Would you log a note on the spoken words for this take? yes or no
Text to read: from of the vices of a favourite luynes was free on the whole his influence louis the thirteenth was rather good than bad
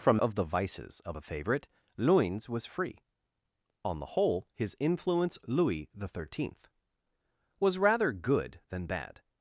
no